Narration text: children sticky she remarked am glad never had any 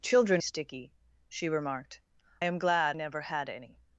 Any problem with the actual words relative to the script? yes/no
no